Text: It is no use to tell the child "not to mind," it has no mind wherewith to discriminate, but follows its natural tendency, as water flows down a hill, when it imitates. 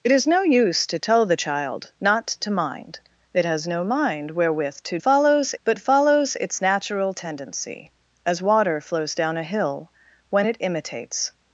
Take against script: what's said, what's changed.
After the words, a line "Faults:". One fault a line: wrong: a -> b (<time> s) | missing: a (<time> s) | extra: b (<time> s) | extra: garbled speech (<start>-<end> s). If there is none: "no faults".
It is no use to tell the child "not to mind," it has no mind wherewith to follows, but follows its natural tendency, as water flows down a hill, when it imitates.
Faults:
wrong: discriminate -> follows (5.0 s)